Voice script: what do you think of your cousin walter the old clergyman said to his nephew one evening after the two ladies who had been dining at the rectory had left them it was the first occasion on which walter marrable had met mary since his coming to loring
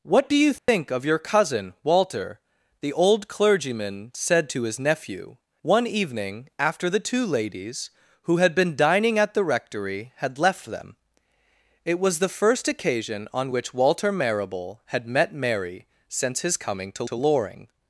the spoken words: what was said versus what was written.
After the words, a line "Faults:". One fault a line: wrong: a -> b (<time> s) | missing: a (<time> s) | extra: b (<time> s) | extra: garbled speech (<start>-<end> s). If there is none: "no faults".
what do you think of your cousin walter the old clergyman said to his nephew one evening after the two ladies who had been dining at the rectory had left them it was the first occasion on which walter marrable had met mary since his coming to to loring
Faults:
extra: to (17.0 s)